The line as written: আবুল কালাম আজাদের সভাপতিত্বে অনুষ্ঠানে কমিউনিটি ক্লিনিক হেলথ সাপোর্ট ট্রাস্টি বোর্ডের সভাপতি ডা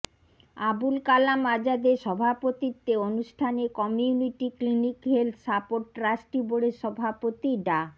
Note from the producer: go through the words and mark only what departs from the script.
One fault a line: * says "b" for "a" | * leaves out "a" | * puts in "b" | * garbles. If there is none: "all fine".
all fine